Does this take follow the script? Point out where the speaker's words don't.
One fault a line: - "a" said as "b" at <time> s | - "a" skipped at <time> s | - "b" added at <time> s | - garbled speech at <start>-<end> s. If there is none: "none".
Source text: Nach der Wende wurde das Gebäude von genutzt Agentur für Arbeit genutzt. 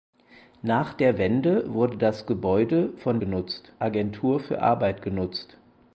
none